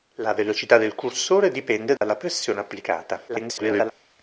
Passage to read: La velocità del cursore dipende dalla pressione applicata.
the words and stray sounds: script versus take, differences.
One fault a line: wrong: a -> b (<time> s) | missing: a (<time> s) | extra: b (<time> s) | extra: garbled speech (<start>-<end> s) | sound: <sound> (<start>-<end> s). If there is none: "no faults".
sound: dropout (2.0-2.0 s)
extra: garbled speech (3.3-3.9 s)